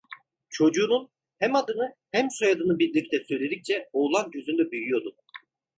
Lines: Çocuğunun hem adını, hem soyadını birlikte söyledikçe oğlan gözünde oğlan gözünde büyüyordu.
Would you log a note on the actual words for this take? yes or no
yes